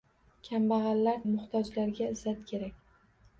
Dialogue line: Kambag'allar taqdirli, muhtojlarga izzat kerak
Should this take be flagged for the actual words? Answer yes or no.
yes